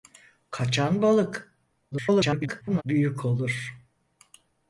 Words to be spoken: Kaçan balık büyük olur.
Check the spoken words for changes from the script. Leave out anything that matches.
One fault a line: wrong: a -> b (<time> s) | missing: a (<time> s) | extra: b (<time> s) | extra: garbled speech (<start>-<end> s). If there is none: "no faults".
extra: garbled speech (1.9-2.8 s)